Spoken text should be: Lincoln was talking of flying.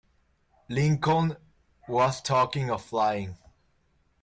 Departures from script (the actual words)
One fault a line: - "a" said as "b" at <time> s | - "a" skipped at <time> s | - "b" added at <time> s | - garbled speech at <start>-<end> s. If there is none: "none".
none